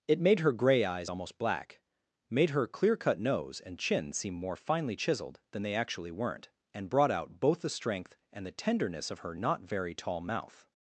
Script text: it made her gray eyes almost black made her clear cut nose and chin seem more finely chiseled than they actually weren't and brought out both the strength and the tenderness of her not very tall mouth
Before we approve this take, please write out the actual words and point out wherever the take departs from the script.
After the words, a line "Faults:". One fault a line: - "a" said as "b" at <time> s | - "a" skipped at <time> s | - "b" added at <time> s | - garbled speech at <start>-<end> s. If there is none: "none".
it made her gray eyes almost black made her clear cut nose and chin seem more finely chiseled than they actually weren't and brought out both the strength and the tenderness of her not very tall mouth
Faults:
none